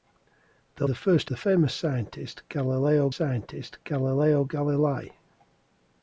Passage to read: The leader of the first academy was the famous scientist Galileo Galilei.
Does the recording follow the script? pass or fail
fail